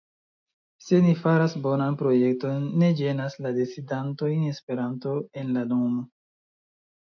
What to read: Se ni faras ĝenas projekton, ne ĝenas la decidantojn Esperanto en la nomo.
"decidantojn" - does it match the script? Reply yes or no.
yes